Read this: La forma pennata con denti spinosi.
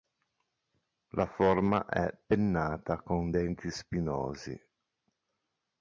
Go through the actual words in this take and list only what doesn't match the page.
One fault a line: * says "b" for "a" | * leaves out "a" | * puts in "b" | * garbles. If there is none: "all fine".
* puts in "è"